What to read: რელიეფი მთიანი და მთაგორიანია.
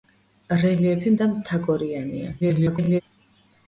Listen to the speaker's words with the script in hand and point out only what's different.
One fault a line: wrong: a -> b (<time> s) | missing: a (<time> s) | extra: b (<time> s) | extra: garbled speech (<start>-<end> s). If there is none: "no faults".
missing: მთიანი (1.1 s)
extra: garbled speech (2.4-3.0 s)